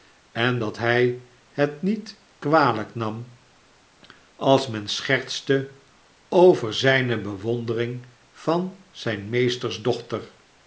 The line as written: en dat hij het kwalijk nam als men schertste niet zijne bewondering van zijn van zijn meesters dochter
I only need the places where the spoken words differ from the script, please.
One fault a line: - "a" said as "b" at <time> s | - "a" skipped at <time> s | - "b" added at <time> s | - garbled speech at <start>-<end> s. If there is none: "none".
- "niet" added at 1.8 s
- "niet" said as "over" at 6.3 s
- "van zijn" skipped at 9.3 s